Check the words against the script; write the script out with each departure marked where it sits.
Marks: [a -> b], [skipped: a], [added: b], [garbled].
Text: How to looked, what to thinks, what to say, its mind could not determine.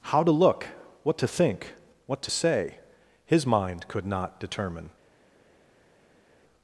How to [looked, -> look] what to [thinks, -> think] what to say, [its -> his] mind could not determine.